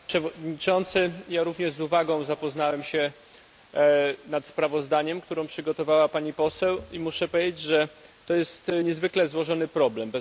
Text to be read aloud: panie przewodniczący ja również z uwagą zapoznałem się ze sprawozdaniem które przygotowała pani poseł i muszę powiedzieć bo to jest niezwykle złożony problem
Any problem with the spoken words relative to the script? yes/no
yes